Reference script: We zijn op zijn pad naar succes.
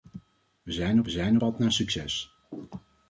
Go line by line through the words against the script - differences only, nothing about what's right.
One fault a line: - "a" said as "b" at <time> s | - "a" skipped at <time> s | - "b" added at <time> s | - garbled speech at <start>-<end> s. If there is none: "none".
none